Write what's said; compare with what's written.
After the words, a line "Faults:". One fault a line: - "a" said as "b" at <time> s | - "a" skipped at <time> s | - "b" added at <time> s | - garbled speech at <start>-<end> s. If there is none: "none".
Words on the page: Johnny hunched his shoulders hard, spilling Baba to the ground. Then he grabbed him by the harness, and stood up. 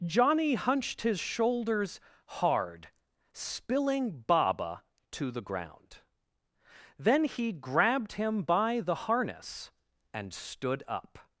Johnny hunched his shoulders hard, spilling Baba to the ground. Then he grabbed him by the harness, and stood up.
Faults:
none